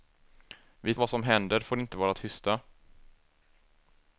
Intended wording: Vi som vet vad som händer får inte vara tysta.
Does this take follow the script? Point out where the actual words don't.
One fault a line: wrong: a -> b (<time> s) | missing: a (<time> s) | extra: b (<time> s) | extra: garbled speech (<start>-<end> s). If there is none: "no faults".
missing: som vet (0.9 s)